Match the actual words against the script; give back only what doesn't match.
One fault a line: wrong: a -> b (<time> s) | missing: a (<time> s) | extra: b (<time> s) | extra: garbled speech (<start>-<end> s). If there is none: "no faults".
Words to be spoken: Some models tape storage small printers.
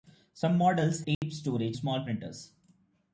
no faults